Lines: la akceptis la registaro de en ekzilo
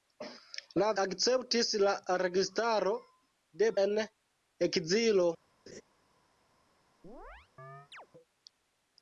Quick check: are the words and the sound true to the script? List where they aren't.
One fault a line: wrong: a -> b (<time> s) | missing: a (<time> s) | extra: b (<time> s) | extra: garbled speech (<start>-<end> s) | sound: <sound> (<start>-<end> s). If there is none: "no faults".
sound: laugh (5.7-5.8 s)
sound: chirp (7.0-8.1 s)